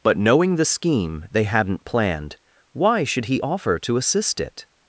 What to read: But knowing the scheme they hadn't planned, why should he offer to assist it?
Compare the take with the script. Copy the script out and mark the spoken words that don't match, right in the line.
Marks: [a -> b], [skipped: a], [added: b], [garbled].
But knowing the scheme they hadn't planned, why should he offer to assist it?